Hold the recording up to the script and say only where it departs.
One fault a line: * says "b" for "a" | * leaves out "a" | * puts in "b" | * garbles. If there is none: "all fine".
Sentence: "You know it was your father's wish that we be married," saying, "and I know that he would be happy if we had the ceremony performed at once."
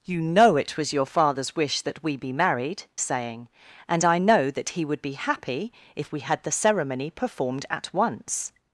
all fine